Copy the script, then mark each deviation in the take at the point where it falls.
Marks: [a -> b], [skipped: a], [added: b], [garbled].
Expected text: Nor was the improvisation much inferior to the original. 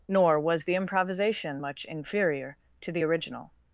Nor was the improvisation much inferior to the original.